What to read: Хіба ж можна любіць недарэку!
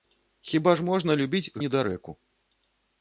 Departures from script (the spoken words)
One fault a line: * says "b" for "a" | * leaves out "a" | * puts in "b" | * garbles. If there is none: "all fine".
all fine